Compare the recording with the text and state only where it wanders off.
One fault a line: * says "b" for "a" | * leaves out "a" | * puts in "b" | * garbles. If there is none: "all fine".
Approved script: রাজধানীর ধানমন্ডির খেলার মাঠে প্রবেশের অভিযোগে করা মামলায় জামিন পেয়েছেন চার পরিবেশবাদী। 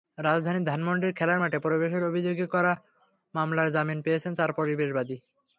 all fine